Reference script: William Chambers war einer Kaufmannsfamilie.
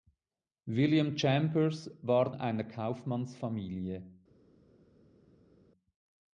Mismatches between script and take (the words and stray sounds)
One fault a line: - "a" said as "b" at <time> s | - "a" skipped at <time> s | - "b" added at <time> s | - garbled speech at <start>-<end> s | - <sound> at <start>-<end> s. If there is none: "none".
none